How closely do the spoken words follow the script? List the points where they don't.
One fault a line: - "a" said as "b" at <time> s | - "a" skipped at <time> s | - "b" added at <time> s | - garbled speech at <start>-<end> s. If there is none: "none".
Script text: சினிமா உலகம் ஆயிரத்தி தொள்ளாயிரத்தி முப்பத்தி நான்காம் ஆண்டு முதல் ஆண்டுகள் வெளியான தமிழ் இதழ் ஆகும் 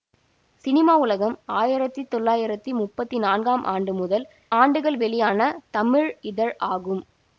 none